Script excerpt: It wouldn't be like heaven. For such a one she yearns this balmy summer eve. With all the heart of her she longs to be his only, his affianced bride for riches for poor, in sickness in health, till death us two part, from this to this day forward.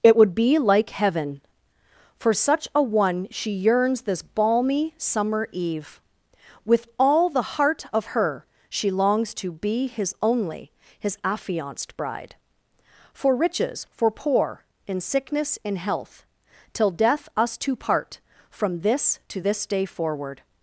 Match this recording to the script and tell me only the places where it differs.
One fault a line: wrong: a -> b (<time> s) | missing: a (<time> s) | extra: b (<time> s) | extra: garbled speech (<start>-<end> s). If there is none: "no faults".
wrong: wouldn't -> would (0.1 s)